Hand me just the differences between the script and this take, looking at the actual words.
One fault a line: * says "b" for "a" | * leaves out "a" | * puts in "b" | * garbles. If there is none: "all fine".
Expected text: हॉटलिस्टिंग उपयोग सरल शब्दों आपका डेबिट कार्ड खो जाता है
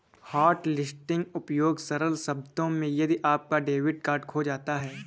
* puts in "में यदि"